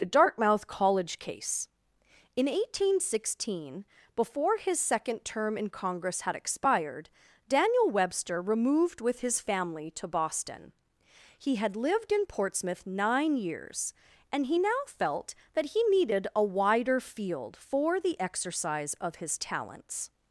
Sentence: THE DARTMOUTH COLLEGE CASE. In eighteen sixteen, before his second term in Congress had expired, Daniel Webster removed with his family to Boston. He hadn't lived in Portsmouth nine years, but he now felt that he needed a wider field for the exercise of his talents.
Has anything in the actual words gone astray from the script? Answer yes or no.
yes